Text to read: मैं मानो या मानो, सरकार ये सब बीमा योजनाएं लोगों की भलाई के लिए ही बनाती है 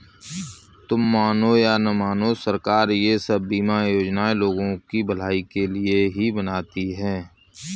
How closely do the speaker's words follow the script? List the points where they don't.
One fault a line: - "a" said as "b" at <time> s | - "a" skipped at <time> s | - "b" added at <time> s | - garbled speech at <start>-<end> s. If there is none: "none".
- "मैं" said as "तुम" at 0.9 s
- "न" added at 1.8 s